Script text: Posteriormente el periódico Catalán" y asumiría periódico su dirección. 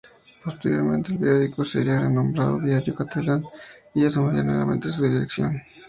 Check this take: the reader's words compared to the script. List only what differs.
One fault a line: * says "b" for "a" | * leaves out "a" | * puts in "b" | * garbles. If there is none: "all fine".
* puts in "sería renombrado Diario"
* says "nuevamente" for "periódico"